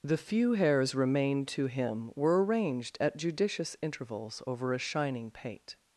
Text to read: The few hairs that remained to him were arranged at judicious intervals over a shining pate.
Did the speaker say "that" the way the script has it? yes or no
no